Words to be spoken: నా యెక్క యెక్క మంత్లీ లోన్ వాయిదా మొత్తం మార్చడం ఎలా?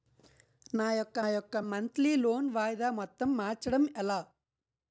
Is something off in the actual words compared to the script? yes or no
no